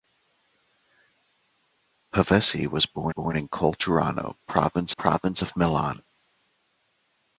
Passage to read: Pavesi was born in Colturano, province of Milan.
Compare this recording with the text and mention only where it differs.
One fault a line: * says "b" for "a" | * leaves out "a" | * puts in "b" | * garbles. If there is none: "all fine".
* puts in "born"
* puts in "province"